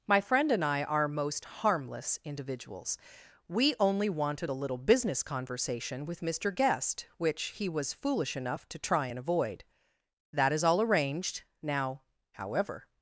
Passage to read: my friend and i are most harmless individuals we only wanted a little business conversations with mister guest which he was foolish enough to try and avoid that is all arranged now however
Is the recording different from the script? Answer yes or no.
yes